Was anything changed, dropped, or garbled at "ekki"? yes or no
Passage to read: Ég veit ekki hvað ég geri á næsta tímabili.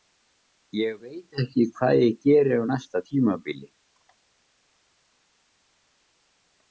no